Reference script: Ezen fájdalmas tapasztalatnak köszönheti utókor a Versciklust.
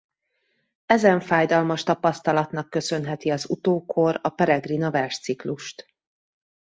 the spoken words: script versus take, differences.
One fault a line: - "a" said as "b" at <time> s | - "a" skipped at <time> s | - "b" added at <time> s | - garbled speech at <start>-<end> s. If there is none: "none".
- "az" added at 3.3 s
- "Peregrina" added at 4.3 s